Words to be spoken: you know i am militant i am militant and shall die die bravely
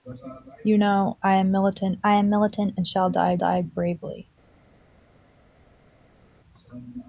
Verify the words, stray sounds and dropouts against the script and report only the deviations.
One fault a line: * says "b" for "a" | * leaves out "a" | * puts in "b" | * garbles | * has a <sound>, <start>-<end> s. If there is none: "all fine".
all fine